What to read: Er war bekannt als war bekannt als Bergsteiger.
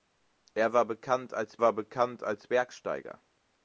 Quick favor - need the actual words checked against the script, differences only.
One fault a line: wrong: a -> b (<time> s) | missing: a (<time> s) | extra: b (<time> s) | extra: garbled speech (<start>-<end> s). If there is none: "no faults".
no faults